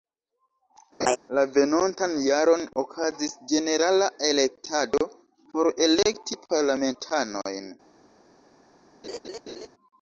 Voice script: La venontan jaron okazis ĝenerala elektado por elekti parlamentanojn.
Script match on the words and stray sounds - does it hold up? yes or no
no